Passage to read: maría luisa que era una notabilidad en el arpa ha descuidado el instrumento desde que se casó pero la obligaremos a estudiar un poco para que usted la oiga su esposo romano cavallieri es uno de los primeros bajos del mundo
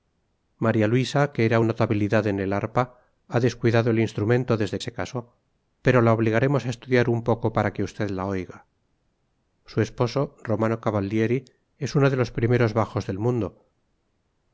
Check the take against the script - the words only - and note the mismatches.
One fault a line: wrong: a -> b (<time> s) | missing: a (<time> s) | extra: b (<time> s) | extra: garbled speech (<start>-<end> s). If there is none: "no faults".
missing: una (1.6 s)
missing: que (4.8 s)